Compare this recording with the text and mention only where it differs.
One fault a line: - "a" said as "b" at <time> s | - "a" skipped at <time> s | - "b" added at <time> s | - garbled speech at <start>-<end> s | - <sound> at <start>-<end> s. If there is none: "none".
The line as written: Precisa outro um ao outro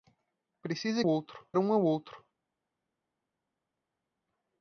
none